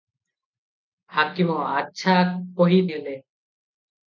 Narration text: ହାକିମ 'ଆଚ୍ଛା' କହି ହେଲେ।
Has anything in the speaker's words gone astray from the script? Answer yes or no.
no